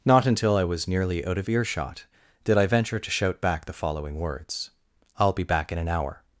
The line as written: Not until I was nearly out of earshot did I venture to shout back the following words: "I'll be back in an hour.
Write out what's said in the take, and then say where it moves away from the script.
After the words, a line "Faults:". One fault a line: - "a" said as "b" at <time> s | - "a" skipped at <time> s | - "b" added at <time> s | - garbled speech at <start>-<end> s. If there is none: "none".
Not until I was nearly out of earshot did I venture to shout back the following words: "I'll be back in an hour.
Faults:
none